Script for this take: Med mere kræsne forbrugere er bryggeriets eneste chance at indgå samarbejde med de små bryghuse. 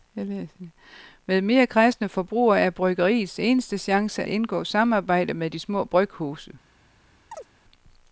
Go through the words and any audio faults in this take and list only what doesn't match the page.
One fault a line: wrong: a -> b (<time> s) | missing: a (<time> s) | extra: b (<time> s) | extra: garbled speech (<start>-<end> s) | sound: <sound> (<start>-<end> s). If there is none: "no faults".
missing: at (4.2 s)
sound: chirp (7.3-7.5 s)